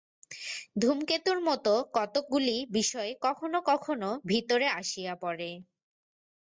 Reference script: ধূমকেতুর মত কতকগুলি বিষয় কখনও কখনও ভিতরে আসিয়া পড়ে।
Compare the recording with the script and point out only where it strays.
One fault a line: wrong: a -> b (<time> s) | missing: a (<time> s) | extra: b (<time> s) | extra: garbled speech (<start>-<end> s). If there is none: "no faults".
no faults